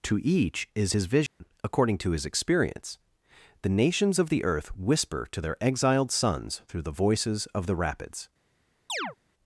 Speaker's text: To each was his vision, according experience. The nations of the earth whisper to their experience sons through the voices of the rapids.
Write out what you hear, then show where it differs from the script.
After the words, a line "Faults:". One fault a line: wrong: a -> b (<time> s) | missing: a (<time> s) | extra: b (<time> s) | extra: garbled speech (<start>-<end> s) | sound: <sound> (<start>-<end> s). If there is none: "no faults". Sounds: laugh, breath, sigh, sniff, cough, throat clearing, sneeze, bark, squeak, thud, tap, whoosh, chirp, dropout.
To each is his vision, according to his experience. The nations of the earth whisper to their exiled sons through the voices of the rapids.
Faults:
wrong: was -> is (0.7 s)
sound: dropout (1.3-1.4 s)
extra: to his (2.0 s)
wrong: experience -> exiled (5.6 s)
sound: chirp (8.9-9.2 s)